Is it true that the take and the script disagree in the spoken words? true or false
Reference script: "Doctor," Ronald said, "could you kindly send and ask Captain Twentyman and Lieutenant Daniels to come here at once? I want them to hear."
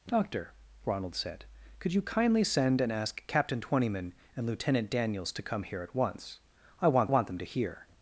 true